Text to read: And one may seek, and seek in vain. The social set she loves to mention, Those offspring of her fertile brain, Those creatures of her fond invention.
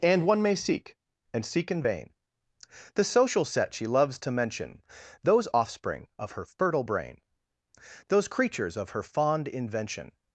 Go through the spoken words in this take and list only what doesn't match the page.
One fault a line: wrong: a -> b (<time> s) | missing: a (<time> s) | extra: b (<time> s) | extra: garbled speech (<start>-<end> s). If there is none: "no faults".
no faults